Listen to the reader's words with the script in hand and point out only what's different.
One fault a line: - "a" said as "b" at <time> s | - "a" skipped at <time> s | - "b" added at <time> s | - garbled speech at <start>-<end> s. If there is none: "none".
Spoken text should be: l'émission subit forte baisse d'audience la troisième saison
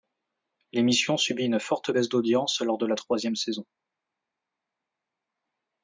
- "une" added at 1.4 s
- "lors de" added at 2.6 s